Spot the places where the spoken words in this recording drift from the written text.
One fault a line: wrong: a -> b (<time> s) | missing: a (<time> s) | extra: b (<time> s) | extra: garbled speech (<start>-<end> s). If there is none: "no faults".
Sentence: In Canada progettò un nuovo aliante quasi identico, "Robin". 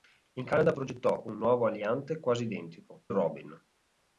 no faults